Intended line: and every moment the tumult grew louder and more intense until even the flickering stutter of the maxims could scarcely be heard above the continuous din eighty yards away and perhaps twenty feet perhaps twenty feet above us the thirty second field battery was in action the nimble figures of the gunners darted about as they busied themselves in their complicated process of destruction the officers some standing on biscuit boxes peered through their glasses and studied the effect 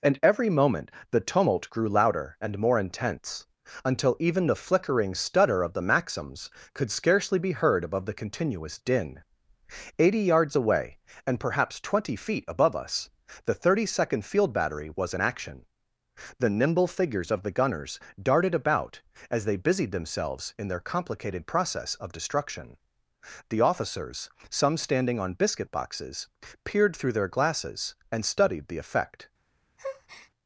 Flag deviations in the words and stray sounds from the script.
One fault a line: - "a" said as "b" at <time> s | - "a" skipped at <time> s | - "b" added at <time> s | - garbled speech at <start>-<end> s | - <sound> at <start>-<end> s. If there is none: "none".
- "perhaps twenty feet" skipped at 12.4 s
- breath at 29.8-30.3 s